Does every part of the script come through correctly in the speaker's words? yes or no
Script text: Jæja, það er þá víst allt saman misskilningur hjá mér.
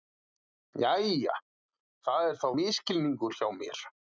no